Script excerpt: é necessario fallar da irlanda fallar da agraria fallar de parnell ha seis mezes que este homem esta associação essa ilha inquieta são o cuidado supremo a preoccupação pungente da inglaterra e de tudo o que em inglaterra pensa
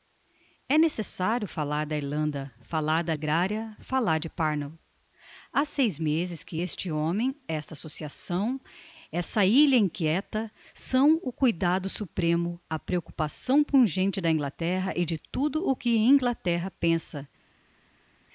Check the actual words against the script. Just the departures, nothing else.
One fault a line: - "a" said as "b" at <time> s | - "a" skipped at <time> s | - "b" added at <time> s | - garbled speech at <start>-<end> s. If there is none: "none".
none